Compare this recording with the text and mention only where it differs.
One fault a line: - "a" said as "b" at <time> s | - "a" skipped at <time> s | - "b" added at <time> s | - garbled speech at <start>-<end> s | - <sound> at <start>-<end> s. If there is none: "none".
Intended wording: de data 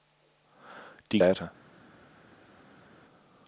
none